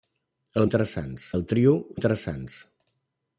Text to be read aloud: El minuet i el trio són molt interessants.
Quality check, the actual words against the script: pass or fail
fail